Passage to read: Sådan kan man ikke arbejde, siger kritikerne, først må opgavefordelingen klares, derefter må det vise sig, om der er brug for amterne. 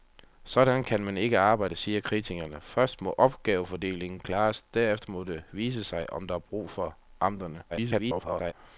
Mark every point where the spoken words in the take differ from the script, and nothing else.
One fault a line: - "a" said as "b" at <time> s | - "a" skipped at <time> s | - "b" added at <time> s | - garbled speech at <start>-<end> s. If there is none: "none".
- garbled speech at 7.7-8.5 s